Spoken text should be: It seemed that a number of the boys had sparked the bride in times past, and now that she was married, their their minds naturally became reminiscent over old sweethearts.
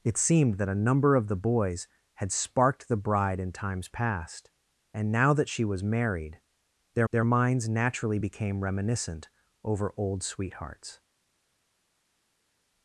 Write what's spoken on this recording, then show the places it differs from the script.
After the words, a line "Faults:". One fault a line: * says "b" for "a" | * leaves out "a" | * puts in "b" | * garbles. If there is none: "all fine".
It seemed that a number of the boys had sparked the bride in times past, and now that she was married, their their minds naturally became reminiscent over old sweethearts.
Faults:
all fine